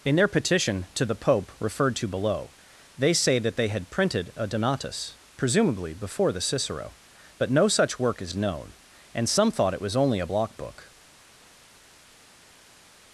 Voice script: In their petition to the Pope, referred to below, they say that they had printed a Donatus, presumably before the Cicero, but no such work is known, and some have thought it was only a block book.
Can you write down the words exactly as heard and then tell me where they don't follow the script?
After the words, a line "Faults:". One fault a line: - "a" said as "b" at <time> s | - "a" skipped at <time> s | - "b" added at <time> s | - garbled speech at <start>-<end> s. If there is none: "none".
In their petition to the Pope, referred to below, they say that they had printed a Donatus, presumably before the Cicero, but no such work is known, and some thought it was only a block book.
Faults:
- "have" skipped at 9.5 s